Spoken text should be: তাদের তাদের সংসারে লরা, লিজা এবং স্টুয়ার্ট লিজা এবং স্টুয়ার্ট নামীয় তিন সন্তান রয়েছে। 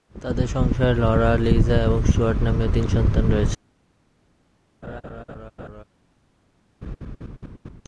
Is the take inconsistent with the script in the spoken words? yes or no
yes